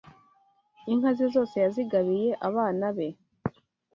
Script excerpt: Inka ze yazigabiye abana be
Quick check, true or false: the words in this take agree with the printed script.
false